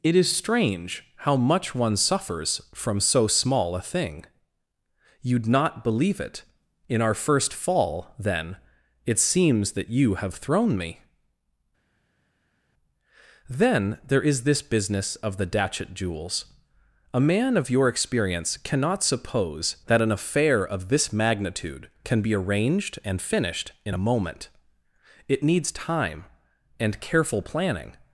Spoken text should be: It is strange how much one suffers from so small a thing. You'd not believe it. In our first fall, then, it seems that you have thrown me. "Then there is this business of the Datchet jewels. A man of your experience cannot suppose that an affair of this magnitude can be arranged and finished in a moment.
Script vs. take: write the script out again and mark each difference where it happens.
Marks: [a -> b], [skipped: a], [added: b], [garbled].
It is strange how much one suffers from so small a thing. You'd not believe it. In our first fall, then, it seems that you have thrown me. "Then there is this business of the Datchet jewels. A man of your experience cannot suppose that an affair of this magnitude can be arranged and finished in a moment. [added: It needs time and careful planning]